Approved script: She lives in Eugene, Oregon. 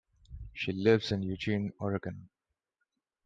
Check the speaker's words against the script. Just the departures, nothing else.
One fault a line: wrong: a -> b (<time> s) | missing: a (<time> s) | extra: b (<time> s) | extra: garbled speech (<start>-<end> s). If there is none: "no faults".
no faults